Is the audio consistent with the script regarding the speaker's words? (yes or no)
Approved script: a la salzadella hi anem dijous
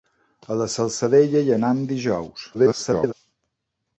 no